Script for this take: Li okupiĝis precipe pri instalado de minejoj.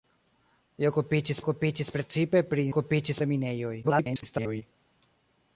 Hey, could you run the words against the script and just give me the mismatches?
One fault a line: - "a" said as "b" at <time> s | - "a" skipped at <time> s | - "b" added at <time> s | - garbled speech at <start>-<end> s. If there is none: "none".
- "okupiĝis" added at 1.4 s
- "instalado" said as "okupiĝis" at 2.7 s
- garbled speech at 3.8-4.6 s